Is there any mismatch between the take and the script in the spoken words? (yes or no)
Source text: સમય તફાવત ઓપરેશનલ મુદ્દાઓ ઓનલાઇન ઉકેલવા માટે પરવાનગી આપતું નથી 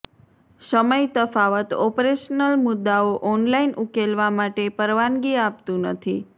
no